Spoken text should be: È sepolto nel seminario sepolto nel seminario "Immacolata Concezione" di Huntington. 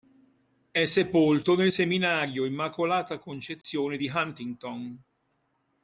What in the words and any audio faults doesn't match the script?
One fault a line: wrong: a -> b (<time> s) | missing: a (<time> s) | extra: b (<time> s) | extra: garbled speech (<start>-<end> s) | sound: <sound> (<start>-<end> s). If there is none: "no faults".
missing: sepolto nel seminario (2.4 s)
sound: dropout (3.6-3.6 s)